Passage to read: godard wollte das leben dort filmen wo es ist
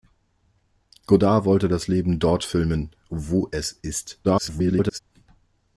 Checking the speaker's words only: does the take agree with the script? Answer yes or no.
no